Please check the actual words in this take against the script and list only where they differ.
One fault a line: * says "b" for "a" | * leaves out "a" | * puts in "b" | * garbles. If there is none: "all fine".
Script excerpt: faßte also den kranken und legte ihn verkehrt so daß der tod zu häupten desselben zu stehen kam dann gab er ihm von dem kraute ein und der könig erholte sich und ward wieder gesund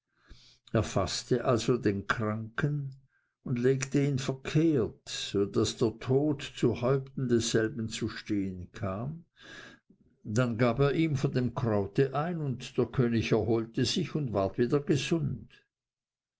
all fine